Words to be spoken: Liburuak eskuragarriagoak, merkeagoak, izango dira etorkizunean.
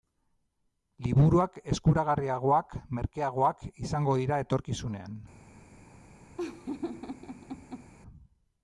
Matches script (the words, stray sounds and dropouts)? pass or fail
fail